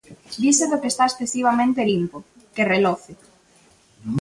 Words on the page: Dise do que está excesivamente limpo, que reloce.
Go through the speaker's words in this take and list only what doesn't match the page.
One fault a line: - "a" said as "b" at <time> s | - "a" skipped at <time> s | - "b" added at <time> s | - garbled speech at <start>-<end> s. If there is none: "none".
none